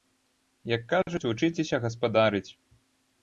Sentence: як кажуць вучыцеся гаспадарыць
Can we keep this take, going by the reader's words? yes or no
yes